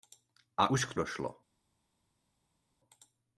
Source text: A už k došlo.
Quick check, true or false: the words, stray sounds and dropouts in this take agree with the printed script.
true